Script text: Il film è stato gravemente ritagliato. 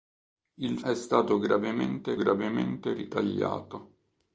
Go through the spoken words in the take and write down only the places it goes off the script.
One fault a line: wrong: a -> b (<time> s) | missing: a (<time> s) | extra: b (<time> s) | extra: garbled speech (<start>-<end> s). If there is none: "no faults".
missing: film (0.8 s)
extra: gravemente (2.1 s)